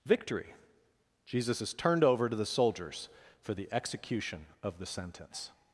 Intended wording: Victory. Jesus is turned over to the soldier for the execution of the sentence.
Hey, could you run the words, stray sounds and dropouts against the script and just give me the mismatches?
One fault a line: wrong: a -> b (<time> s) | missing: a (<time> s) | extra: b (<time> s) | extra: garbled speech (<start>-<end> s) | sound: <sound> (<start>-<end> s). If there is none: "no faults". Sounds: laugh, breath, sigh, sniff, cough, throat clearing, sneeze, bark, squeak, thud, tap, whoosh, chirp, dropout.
wrong: soldier -> soldiers (2.5 s)